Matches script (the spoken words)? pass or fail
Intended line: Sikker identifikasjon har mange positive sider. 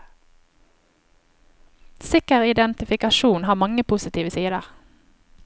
pass